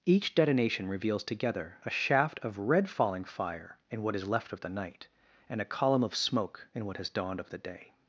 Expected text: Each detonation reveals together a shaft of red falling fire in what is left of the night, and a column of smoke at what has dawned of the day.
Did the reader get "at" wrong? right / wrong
wrong